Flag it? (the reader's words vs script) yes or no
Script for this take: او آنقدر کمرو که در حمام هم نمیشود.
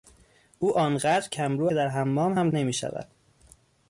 no